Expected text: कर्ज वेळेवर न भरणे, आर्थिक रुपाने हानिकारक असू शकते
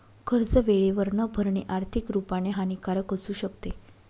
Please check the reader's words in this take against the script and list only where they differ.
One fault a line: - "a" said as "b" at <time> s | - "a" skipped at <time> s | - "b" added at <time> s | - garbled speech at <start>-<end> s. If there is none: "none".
none